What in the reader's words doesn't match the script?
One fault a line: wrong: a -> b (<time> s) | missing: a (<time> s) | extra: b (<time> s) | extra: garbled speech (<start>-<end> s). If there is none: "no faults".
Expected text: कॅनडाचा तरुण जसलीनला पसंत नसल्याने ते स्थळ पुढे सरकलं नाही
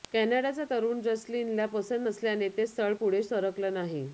no faults